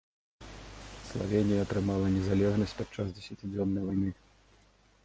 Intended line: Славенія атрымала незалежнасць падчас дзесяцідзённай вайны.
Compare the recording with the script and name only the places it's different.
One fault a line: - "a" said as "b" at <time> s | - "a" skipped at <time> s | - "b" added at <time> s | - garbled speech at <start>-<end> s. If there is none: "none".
none